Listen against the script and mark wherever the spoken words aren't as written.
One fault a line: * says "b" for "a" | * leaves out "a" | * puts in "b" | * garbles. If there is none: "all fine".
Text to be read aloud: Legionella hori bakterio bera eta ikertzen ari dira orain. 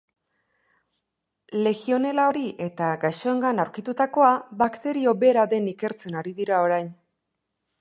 * puts in "eta gaixoengan aurkitutakoa"
* says "den" for "eta"